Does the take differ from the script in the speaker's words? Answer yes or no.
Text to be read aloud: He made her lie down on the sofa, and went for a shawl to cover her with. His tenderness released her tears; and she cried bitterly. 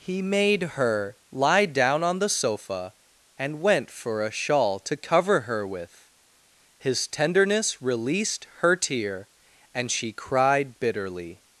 yes